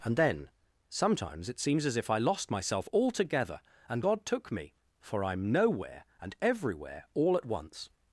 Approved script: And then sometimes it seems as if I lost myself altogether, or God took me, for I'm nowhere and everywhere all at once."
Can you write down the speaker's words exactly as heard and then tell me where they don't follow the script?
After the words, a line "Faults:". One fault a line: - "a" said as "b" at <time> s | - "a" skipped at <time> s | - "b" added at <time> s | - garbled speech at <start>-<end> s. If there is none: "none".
And then sometimes it seems as if I lost myself altogether, and God took me, for I'm nowhere and everywhere all at once."
Faults:
- "or" said as "and" at 3.9 s